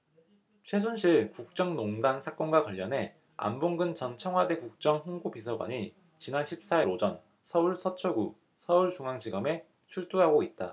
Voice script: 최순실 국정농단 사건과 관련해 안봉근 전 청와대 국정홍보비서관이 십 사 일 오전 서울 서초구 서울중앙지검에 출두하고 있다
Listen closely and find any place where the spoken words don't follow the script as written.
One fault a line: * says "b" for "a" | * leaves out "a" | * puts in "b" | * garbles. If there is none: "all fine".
* puts in "지난"